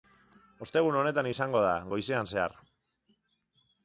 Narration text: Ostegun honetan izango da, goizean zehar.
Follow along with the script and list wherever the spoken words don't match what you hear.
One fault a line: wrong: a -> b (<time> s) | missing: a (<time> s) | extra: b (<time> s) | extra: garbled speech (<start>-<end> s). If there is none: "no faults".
no faults